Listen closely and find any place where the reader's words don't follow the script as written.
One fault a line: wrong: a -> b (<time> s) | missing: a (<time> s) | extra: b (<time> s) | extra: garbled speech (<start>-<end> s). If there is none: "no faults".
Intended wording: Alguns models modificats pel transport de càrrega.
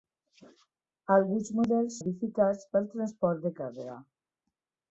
no faults